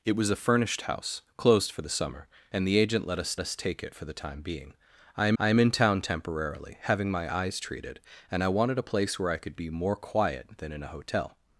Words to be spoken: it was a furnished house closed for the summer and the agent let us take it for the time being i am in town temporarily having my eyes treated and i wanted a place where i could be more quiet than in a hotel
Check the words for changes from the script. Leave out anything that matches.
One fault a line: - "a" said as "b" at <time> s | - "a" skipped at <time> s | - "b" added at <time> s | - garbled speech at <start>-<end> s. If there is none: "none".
- "us" added at 3.4 s
- "i am" added at 5.4 s